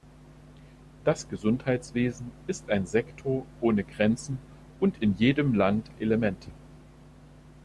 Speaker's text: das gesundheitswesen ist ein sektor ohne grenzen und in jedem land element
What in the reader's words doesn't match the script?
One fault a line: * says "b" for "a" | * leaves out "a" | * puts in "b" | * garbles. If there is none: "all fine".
all fine